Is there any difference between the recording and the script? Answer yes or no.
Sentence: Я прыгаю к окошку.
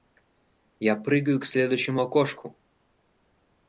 yes